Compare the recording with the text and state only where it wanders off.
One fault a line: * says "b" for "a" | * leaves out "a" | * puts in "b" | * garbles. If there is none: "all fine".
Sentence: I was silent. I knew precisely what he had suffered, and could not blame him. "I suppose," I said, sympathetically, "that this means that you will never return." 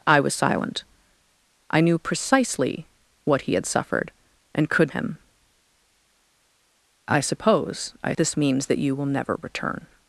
* leaves out "not blame"
* leaves out "said sympathetically that"